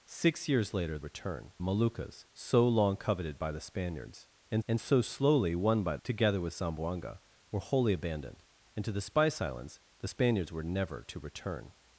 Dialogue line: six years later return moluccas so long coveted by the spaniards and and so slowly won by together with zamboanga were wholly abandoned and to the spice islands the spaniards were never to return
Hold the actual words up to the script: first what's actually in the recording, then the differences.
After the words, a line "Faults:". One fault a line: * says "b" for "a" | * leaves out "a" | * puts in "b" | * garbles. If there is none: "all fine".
six years later return moluccas so long coveted by the spaniards and and so slowly won by together with zamboanga were wholly abandoned and to the spice islands the spaniards were never to return
Faults:
all fine